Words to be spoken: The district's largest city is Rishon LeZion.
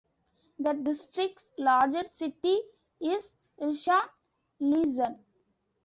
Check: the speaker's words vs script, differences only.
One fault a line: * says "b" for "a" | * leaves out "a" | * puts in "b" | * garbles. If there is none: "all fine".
all fine